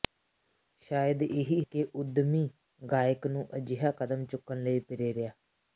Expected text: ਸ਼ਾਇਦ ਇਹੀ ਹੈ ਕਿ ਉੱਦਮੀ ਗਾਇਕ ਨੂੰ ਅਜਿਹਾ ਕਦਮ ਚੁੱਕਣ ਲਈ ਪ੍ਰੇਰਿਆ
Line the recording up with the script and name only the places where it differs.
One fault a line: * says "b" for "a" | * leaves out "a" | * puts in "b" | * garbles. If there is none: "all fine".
* leaves out "ਹੈ"